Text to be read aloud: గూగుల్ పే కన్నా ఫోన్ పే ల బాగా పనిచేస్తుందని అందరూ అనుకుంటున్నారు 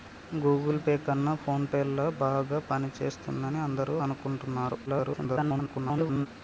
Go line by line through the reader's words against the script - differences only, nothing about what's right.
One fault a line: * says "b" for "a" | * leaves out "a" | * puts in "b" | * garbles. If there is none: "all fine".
* garbles